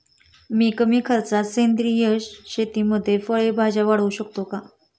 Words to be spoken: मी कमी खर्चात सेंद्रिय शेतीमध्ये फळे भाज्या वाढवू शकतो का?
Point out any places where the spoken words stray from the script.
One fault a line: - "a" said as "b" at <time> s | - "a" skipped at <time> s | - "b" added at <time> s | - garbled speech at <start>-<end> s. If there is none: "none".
none